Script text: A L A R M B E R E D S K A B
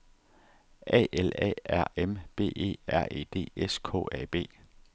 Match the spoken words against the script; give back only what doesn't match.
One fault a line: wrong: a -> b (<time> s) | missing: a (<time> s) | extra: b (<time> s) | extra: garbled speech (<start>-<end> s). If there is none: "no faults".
no faults